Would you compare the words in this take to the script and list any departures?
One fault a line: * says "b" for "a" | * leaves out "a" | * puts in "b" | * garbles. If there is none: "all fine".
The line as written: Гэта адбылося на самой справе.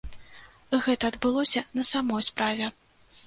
all fine